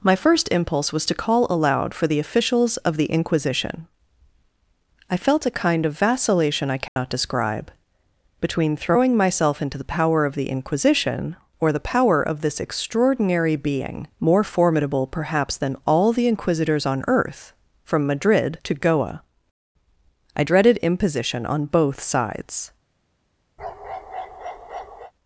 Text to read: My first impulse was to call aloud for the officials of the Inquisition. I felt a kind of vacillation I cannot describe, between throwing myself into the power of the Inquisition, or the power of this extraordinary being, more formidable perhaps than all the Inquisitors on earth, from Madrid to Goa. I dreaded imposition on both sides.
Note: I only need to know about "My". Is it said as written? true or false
true